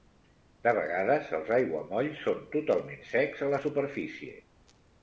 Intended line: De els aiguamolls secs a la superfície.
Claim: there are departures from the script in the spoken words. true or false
true